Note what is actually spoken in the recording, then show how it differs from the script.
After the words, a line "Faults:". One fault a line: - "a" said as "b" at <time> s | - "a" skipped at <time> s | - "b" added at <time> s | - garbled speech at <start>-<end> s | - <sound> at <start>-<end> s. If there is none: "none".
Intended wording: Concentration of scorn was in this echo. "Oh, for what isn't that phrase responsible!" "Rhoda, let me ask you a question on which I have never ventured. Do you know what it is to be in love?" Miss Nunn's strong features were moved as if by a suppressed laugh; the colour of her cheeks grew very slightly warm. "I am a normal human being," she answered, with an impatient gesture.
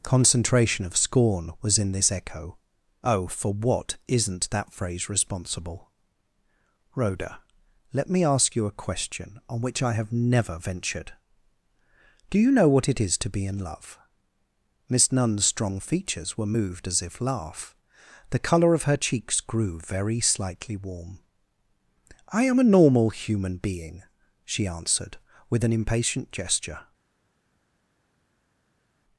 Concentration of scorn was in this echo. "Oh, for what isn't that phrase responsible!" "Rhoda, let me ask you a question on which I have never ventured. Do you know what it is to be in love?" Miss Nunn's strong features were moved as if laugh; the colour of her cheeks grew very slightly warm. "I am a normal human being," she answered, with an impatient gesture.
Faults:
- "by a suppressed" skipped at 17.2 s